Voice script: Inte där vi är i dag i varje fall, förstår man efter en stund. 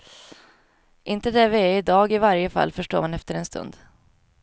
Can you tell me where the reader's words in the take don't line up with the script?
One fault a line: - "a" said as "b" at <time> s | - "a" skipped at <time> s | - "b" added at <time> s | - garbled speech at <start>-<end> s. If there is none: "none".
none